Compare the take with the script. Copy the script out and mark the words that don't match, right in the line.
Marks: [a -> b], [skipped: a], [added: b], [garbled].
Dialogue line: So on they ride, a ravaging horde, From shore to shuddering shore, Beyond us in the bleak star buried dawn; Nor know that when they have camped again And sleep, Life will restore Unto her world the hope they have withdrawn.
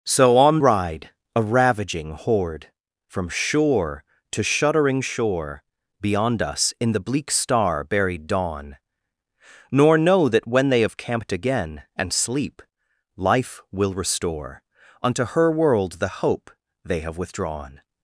So on [skipped: they] ride, a ravaging horde, From shore to shuddering shore, Beyond us in the bleak star buried dawn; Nor know that when they have camped again And sleep, Life will restore Unto her world the hope they have withdrawn.